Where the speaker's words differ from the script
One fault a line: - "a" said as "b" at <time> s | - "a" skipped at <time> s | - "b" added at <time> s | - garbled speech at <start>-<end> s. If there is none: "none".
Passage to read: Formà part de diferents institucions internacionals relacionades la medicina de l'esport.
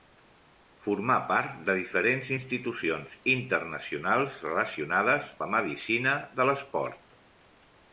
none